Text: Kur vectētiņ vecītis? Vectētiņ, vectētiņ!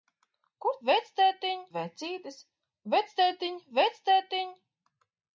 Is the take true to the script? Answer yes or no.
yes